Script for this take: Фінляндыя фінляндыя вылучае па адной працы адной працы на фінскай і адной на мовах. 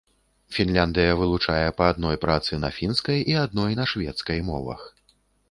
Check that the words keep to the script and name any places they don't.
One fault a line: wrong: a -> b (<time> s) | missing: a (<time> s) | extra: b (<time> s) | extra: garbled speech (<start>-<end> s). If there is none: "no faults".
missing: фінляндыя (1.1 s)
missing: адной працы (2.6 s)
extra: шведскай (3.9 s)